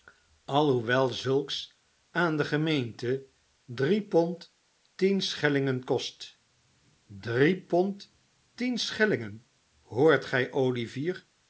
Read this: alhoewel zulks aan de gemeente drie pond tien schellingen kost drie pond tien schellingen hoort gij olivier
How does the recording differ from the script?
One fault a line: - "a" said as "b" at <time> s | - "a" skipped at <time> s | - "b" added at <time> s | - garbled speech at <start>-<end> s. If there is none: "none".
none